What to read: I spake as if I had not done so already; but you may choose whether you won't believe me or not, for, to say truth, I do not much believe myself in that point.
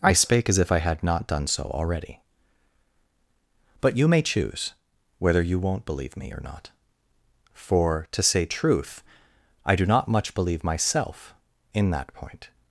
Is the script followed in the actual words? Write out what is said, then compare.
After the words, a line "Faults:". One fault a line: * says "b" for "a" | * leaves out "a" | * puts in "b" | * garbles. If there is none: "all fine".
I spake as if I had not done so already; but you may choose whether you won't believe me or not, for, to say truth, I do not much believe myself in that point.
Faults:
all fine